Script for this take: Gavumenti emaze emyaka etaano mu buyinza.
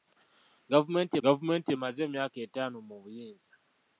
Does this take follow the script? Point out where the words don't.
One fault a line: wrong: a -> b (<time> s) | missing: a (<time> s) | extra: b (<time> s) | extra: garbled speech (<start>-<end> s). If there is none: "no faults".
extra: gavumenti (1.2 s)